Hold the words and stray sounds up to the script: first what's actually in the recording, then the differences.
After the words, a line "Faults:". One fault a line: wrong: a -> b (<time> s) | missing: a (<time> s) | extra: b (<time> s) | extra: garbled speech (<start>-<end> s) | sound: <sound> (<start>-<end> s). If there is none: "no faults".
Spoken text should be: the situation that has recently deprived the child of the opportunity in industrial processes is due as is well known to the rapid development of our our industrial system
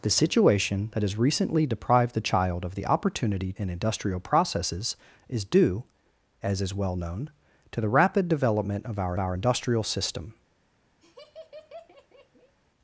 the situation that has recently deprived the child of the opportunity in industrial processes is due as is well known to the rapid development of our our industrial system
Faults:
sound: laugh (11.0-12.5 s)